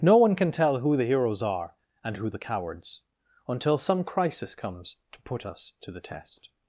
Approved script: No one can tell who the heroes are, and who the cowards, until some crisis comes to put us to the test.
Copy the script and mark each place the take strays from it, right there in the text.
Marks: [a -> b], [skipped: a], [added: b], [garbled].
No one can tell who the heroes are, and who the cowards, until some crisis comes to put us to the test.